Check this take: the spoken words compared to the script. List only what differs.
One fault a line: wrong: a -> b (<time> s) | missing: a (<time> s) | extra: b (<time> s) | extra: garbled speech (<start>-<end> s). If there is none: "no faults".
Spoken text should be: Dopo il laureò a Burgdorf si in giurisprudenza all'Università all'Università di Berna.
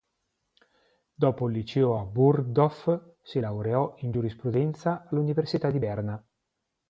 wrong: laureò -> liceo (1.5 s)
extra: laureò (3.4 s)
missing: all'Università (5.7 s)